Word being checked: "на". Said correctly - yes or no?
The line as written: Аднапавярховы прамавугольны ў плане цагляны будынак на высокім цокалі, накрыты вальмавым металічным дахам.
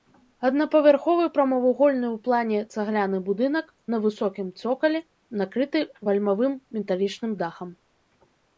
yes